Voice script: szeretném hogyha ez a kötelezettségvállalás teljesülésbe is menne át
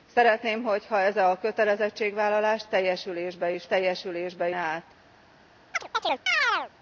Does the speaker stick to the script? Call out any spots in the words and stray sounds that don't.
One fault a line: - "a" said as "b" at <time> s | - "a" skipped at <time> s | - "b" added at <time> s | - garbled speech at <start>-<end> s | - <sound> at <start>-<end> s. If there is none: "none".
- "menne" said as "teljesülésbe" at 3.7 s
- chirp at 5.7-6.7 s